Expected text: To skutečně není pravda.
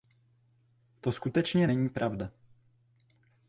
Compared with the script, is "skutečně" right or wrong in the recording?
right